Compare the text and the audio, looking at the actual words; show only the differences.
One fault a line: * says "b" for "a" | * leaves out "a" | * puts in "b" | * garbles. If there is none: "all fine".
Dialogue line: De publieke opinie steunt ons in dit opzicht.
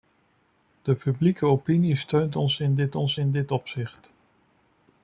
* puts in "ons in dit"